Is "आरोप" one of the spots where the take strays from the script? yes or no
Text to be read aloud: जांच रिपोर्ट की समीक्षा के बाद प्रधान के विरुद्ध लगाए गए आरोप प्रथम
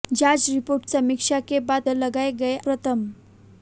yes